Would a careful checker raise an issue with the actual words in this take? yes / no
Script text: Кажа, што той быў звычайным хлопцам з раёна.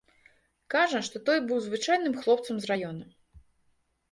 no